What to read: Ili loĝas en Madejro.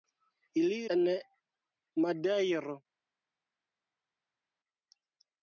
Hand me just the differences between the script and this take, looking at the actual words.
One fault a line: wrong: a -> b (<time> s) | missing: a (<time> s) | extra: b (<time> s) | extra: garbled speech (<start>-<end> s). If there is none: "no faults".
missing: loĝas (0.8 s)